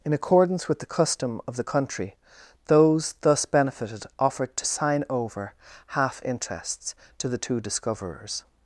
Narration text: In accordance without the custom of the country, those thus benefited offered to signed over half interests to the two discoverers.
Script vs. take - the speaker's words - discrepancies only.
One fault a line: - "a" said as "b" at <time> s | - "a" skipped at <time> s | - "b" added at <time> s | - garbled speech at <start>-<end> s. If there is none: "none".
- "without" said as "with" at 0.7 s
- "signed" said as "sign" at 4.7 s